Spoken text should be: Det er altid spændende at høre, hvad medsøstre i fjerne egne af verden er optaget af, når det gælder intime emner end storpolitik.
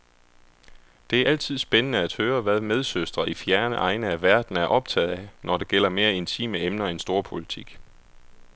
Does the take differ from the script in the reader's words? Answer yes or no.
yes